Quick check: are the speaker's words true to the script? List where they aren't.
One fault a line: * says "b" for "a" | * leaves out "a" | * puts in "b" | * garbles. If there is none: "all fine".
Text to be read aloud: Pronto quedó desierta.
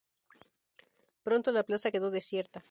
* puts in "la plaza"